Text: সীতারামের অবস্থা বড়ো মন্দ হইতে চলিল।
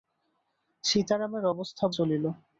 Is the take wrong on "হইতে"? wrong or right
wrong